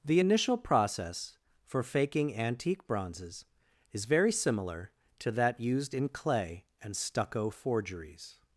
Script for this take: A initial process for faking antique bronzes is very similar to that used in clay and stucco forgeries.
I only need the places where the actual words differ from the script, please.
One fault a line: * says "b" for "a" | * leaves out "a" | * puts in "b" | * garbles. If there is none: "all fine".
* says "The" for "A"